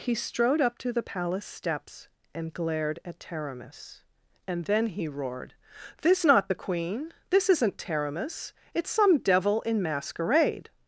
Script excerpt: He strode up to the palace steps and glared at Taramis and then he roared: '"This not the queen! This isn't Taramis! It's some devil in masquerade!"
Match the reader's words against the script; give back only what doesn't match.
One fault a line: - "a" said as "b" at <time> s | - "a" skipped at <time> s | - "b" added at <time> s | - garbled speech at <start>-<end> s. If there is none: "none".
none